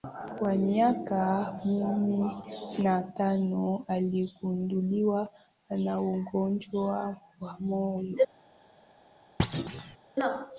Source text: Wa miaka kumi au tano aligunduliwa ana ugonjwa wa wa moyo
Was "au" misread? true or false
true